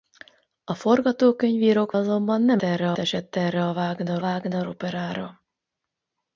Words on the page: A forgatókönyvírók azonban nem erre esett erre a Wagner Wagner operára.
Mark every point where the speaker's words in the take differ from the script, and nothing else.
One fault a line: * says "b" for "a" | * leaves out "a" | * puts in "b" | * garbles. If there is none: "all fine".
all fine